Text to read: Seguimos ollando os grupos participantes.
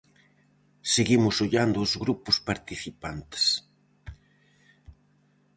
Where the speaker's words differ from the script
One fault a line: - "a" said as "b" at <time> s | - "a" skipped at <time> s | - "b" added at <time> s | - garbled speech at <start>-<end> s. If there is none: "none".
none